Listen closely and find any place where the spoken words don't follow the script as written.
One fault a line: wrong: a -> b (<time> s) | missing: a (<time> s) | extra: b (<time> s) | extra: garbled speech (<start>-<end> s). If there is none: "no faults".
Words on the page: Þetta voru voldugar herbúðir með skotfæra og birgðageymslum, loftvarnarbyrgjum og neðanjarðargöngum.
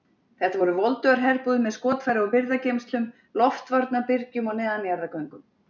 no faults